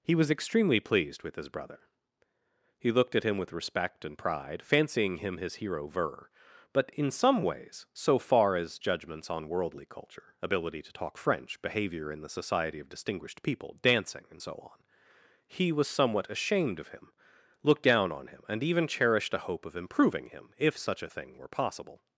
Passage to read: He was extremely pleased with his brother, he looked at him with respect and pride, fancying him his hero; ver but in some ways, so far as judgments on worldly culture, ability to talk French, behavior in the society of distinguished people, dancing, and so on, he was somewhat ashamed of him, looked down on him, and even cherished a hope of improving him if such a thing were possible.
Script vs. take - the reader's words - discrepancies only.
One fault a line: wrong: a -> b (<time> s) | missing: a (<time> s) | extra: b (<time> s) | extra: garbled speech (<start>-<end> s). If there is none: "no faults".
no faults